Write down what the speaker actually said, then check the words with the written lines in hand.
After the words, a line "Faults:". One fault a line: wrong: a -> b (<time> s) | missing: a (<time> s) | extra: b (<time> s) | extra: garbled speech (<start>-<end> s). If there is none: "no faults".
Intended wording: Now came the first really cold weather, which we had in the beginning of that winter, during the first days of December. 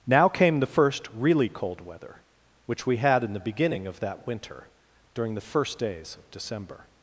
Now came the first really cold weather, which we had in the beginning of that winter, during the first days of December.
Faults:
no faults